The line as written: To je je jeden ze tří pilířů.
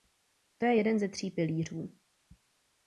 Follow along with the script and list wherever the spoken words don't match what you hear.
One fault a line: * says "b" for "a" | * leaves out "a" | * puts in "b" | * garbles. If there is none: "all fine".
* leaves out "je"